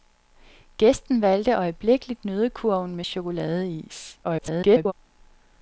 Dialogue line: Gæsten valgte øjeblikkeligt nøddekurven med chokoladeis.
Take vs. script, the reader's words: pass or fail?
fail